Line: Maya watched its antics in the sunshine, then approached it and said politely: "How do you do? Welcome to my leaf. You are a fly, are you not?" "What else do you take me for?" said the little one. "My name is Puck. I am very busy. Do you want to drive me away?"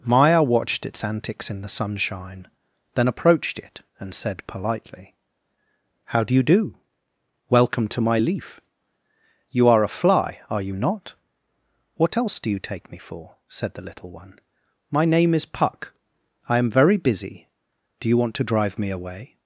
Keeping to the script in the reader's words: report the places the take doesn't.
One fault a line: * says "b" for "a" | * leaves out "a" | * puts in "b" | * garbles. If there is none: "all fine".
all fine